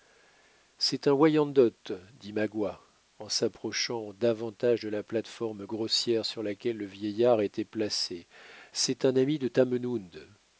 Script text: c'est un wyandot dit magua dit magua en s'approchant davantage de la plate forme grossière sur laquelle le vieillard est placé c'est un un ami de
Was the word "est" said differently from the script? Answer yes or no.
yes